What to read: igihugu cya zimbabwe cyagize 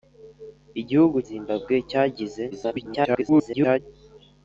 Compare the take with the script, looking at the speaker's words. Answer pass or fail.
fail